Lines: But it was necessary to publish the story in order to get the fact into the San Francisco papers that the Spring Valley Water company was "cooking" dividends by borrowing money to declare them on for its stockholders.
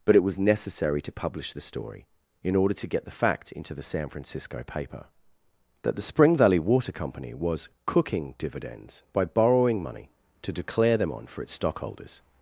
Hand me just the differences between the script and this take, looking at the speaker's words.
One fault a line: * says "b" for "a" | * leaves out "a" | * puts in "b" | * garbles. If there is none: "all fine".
* says "paper" for "papers"